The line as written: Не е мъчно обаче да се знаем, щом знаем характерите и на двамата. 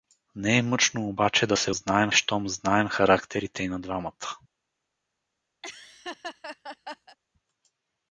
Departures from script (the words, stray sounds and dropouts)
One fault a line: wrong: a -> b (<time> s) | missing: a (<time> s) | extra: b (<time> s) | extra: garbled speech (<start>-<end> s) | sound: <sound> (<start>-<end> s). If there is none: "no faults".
sound: laugh (5.6-7.2 s)